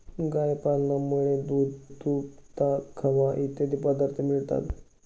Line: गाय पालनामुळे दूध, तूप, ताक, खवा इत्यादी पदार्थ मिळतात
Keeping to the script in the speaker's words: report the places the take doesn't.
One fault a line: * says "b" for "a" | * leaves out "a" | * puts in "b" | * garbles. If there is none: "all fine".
all fine